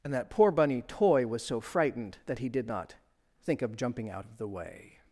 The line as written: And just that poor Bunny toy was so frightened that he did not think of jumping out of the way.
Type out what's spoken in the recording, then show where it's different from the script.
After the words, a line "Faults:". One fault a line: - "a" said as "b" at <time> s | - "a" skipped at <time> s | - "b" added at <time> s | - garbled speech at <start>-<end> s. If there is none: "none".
And that poor Bunny toy was so frightened that he did not think of jumping out of the way.
Faults:
- "just" skipped at 0.1 s